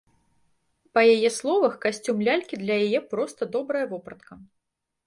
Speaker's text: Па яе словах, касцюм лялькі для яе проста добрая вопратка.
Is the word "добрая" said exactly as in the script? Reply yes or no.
yes